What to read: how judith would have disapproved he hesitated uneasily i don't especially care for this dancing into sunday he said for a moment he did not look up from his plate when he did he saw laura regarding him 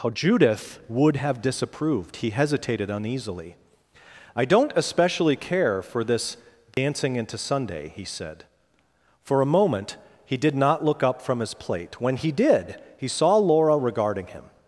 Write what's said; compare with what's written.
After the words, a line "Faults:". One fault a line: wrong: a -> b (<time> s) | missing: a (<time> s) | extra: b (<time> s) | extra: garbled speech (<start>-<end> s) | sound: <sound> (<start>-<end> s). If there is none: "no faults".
how judith would have disapproved he hesitated uneasily i don't especially care for this dancing into sunday he said for a moment he did not look up from his plate when he did he saw laura regarding him
Faults:
sound: dropout (6.7-6.8 s)